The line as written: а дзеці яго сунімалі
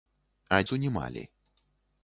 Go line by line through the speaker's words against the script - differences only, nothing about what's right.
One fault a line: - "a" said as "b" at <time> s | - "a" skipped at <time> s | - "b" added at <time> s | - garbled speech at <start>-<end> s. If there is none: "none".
- "дзеці яго" skipped at 0.6 s